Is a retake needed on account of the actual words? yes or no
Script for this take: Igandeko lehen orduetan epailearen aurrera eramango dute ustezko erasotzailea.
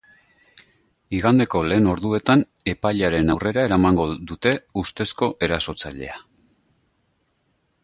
no